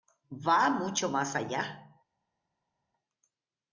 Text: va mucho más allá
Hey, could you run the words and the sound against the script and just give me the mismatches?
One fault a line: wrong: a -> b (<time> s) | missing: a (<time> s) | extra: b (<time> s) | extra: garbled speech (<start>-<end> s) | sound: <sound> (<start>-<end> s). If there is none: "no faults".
no faults